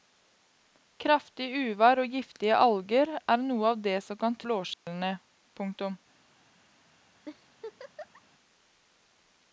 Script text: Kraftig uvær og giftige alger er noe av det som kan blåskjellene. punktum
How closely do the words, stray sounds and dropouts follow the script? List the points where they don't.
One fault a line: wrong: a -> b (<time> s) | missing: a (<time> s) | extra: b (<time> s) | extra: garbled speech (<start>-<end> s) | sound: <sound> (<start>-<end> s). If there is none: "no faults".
sound: dropout (4.7-4.9 s)
sound: laugh (7.2-8.2 s)